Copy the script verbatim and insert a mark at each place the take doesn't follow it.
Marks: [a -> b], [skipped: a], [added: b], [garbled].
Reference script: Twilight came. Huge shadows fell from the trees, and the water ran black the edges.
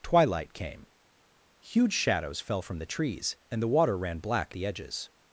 Twilight came. Huge shadows fell from the trees, and the water ran black the edges.